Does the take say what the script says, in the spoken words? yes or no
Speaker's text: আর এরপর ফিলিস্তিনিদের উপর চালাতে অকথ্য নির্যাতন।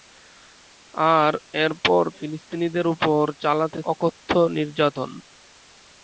yes